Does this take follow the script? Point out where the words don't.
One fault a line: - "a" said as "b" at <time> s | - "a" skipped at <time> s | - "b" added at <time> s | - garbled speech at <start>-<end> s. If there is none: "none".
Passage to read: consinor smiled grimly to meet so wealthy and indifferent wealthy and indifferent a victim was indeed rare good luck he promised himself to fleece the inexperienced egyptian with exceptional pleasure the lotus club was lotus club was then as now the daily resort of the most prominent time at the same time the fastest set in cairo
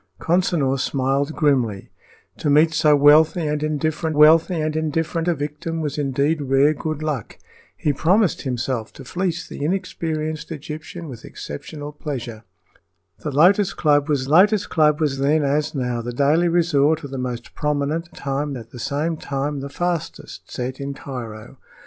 none